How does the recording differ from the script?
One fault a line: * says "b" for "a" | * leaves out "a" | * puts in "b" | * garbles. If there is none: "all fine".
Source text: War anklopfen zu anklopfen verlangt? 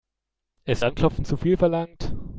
* says "Ist" for "War"
* says "viel" for "anklopfen"